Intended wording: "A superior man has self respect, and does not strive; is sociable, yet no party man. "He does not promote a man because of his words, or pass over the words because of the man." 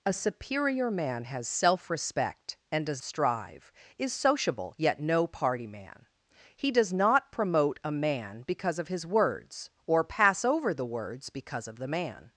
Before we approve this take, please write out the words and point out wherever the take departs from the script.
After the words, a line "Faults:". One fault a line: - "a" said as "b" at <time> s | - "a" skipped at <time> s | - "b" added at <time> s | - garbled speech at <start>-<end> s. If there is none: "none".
"A superior man has self respect, and does strive; is sociable, yet no party man. "He does not promote a man because of his words, or pass over the words because of the man."
Faults:
- "not" skipped at 3.0 s